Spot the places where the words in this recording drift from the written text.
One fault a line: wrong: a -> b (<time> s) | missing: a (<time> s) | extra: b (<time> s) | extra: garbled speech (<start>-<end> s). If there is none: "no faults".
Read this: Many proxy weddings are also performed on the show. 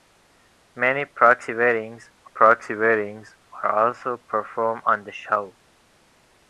extra: proxy weddings (2.2 s)